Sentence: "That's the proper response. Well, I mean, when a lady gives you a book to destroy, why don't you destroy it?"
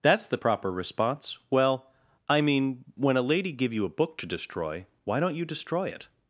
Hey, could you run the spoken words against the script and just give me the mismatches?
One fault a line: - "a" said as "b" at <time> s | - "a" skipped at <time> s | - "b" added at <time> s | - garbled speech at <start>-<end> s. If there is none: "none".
- "gives" said as "give" at 3.5 s